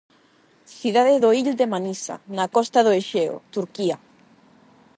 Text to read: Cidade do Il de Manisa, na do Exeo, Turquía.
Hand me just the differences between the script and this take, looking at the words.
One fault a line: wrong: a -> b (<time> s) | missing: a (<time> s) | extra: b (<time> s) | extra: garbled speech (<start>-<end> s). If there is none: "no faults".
extra: costa (2.6 s)